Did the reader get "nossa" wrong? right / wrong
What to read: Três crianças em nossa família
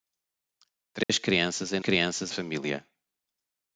wrong